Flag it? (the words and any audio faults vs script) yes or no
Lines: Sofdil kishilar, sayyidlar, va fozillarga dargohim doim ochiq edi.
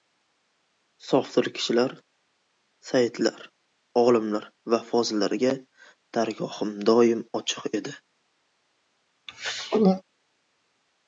yes